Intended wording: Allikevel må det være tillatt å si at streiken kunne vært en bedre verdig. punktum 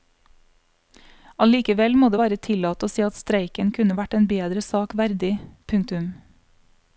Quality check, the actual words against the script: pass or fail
fail